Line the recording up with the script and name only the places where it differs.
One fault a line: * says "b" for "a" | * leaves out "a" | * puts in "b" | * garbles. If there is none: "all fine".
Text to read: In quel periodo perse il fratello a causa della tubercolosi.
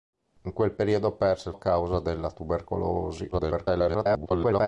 * leaves out "fratello"
* garbles